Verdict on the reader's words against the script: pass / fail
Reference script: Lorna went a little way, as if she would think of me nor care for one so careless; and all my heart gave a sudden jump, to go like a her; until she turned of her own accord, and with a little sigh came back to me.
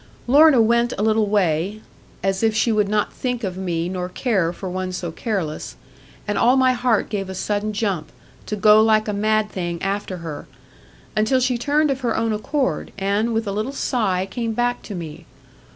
fail